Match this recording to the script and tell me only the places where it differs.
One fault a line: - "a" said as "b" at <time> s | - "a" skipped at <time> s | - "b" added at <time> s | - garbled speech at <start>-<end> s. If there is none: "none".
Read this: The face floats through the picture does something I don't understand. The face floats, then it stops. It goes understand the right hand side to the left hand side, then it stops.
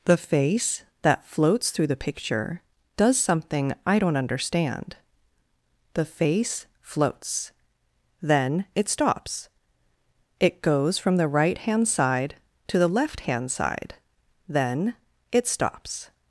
- "that" added at 1.0 s
- "understand" said as "from" at 11.0 s